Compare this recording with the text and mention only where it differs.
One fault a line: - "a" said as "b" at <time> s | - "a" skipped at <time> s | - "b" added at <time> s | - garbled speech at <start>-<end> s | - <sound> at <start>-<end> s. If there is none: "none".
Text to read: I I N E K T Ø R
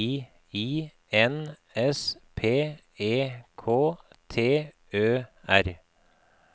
- "S P" added at 1.8 s